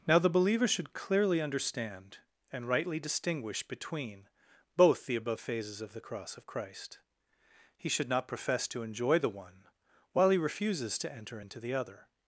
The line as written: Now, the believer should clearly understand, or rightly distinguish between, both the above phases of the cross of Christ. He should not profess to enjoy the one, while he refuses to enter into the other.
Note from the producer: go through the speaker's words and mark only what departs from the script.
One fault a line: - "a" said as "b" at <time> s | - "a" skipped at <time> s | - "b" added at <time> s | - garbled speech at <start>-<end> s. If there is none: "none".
- "or" said as "and" at 2.5 s